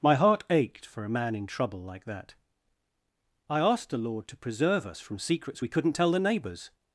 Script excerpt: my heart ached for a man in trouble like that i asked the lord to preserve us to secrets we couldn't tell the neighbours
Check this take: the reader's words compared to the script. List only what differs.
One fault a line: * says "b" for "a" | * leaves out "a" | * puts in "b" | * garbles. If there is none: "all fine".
* says "from" for "to"